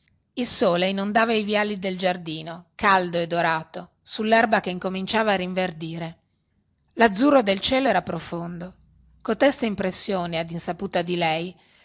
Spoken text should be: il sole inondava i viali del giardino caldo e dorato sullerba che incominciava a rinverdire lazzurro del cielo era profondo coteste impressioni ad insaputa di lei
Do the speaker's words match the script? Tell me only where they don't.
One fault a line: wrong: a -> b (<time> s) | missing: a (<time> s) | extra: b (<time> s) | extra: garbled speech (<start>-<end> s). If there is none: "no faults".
no faults